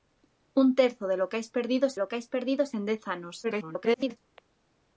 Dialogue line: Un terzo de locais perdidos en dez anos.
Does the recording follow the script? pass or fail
fail